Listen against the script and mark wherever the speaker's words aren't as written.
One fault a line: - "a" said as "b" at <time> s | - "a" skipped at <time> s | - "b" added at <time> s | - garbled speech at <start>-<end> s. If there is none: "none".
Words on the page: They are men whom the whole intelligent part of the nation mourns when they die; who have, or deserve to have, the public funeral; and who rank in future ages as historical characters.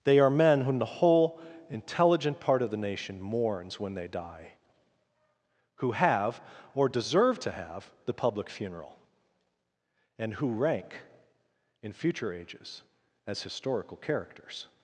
none